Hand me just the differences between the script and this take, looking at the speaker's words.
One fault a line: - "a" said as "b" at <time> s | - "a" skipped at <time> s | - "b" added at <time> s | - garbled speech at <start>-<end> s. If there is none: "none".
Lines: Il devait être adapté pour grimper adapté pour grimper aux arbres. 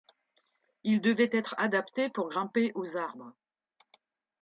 - "adapté pour grimper" skipped at 2.7 s